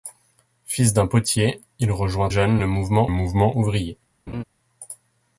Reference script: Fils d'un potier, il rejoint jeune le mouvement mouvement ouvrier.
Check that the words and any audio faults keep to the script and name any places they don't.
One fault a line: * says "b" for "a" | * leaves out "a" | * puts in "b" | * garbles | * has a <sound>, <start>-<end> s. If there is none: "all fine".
* has a laugh, 4.3-4.4 s